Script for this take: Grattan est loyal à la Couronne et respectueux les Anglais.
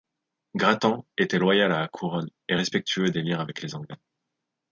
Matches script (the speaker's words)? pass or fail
fail